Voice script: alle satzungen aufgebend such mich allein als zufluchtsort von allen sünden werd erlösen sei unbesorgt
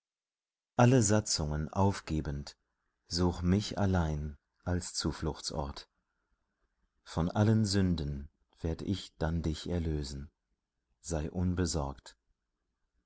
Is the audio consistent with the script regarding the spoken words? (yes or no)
no